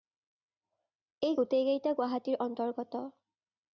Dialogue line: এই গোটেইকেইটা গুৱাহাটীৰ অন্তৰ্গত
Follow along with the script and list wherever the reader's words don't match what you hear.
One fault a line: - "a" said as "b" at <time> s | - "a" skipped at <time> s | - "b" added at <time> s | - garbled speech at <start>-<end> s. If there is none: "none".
none